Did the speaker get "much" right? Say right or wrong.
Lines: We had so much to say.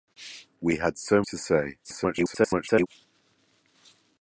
wrong